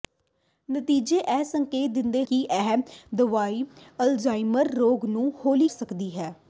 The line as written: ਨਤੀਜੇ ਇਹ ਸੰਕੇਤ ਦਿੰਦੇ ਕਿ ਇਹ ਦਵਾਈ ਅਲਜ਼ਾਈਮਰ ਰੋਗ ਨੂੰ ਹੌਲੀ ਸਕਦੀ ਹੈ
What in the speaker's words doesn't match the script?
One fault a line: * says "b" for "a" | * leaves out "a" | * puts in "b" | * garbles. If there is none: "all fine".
all fine